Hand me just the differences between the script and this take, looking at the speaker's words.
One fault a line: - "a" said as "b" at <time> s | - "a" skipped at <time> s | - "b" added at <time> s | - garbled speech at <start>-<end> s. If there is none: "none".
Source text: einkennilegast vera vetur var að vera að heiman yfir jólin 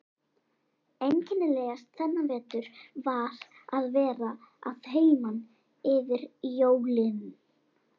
- "vera" said as "þennan" at 2.0 s